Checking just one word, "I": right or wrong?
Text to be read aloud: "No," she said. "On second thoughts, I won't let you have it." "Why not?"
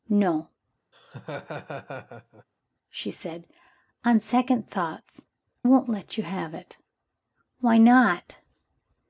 wrong